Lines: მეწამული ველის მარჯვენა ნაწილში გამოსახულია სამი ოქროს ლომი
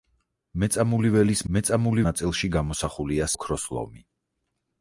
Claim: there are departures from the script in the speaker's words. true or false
true